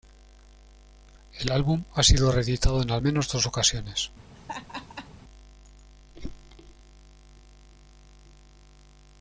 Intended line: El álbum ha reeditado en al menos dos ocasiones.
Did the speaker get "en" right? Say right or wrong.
right